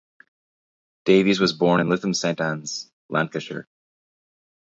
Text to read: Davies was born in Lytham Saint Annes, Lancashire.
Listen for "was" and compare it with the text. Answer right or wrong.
right